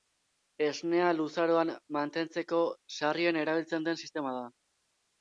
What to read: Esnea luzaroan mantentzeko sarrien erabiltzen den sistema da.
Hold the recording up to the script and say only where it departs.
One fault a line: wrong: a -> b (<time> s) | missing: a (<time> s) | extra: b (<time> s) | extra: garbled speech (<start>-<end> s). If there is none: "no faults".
no faults